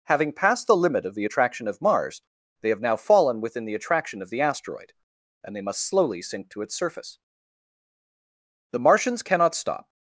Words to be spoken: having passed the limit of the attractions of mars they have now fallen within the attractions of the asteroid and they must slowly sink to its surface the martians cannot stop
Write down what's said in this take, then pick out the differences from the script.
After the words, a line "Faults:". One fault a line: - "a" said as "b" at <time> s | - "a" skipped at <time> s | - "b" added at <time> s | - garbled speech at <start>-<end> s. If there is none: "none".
having passed the limit of the attraction of mars they have now fallen within the attraction of the asteroid and they must slowly sink to its surface the martians cannot stop
Faults:
- "attractions" said as "attraction" at 1.2 s
- "attractions" said as "attraction" at 3.8 s